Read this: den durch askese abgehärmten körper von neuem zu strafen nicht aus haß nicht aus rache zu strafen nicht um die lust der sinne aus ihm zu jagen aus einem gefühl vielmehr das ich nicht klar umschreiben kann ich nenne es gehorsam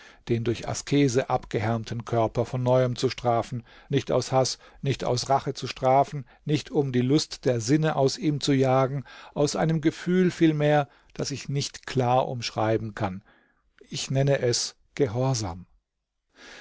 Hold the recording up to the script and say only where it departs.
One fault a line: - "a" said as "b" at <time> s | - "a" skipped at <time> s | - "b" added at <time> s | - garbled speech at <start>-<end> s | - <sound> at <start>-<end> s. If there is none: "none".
none